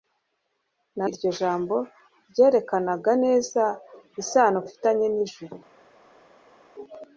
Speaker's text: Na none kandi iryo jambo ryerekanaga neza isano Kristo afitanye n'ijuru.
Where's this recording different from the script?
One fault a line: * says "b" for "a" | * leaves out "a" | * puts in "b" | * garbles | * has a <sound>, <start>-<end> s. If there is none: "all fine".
* leaves out "none kandi"
* leaves out "Kristo"